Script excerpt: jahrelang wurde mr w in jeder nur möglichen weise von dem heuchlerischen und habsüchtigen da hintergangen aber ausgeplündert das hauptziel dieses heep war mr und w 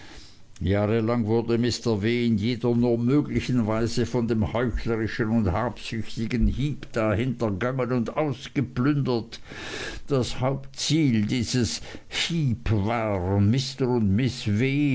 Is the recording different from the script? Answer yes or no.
yes